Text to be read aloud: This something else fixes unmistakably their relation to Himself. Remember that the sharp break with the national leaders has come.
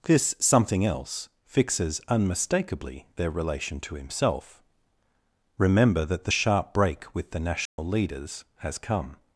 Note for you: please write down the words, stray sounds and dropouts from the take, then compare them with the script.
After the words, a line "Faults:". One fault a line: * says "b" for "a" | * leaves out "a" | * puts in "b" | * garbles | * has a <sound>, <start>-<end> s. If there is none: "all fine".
This something else fixes unmistakably their relation to Himself. Remember that the sharp break with the national leaders has come.
Faults:
* has a dropout, 7.7-7.8 s